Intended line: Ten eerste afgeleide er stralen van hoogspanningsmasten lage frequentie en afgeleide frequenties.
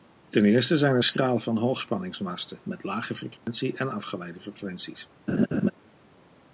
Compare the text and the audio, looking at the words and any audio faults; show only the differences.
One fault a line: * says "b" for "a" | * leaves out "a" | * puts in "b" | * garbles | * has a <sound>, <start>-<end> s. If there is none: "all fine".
* says "zijn" for "afgeleide"
* puts in "met"
* has a dropout, 3.4-3.5 s
* has a laugh, 5.3-5.7 s